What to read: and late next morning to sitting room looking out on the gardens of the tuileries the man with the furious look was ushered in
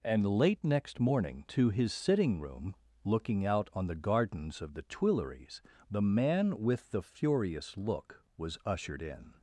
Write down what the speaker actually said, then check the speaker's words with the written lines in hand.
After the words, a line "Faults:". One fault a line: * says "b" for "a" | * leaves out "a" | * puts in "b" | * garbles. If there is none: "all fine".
and late next morning to his sitting room looking out on the gardens of the tuileries the man with the furious look was ushered in
Faults:
* puts in "his"